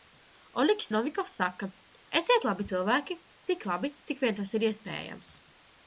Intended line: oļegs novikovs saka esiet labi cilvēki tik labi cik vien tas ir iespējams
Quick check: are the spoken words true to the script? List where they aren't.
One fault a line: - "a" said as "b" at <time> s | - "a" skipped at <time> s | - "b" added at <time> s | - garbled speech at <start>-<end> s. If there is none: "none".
none